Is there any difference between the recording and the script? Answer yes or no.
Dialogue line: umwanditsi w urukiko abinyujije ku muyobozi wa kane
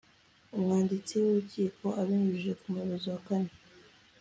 no